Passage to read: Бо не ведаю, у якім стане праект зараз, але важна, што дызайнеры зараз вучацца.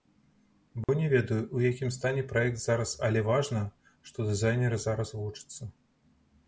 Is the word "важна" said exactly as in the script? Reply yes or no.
yes